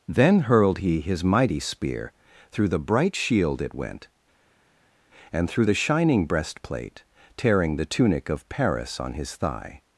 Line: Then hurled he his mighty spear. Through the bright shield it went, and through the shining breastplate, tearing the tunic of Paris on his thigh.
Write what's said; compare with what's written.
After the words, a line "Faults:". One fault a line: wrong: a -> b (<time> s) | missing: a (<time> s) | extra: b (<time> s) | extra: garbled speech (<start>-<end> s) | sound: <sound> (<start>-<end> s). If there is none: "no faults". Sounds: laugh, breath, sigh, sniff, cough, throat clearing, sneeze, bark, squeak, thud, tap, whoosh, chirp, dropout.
Then hurled he his mighty spear. Through the bright shield it went, and through the shining breastplate, tearing the tunic of Paris on his thigh.
Faults:
no faults